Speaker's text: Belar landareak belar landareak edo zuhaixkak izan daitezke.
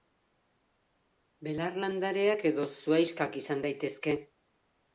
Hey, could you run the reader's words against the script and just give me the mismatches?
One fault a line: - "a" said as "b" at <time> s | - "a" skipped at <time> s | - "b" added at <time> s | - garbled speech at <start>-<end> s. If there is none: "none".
- "belar landareak" skipped at 2.5 s